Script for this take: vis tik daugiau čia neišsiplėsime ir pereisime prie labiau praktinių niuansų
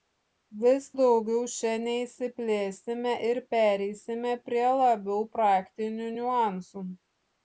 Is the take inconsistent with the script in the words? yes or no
yes